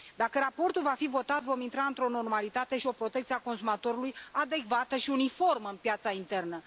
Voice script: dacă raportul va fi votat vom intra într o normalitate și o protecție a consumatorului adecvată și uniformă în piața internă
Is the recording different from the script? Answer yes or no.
no